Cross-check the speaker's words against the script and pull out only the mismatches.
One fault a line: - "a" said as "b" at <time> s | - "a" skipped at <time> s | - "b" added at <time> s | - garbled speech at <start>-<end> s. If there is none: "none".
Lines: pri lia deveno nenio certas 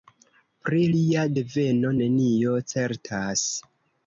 none